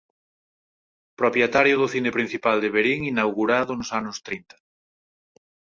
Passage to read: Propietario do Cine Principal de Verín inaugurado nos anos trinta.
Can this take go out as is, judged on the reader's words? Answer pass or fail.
pass